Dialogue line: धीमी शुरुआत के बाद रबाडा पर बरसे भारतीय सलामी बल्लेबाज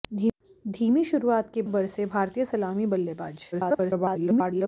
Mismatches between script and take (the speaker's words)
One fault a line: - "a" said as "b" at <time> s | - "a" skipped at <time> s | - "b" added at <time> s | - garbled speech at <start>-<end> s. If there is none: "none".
- "बाद रबाडा पर" skipped at 1.6 s
- garbled speech at 3.5-4.7 s